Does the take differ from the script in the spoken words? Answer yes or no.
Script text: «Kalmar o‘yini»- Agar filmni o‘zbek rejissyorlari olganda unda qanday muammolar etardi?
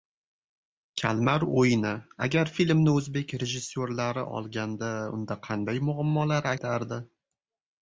no